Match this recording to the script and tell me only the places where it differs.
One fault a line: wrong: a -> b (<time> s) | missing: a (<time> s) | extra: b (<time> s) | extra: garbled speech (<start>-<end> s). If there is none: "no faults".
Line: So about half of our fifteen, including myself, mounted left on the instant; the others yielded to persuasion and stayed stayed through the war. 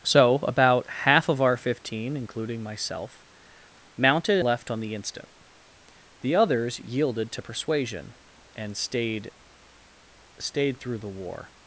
no faults